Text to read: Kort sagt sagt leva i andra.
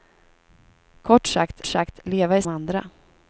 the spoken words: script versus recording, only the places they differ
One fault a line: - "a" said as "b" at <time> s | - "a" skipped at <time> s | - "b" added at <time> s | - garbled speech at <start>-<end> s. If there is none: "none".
none